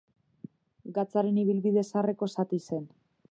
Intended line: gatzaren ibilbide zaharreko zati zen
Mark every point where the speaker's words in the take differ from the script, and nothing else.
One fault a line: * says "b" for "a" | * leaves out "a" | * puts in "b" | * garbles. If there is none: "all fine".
all fine